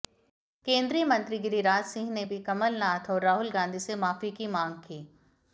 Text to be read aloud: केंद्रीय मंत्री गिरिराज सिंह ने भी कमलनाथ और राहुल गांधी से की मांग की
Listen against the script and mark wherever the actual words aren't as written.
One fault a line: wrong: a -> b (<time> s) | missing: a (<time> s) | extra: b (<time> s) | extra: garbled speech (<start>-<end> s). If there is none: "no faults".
extra: माफी (4.0 s)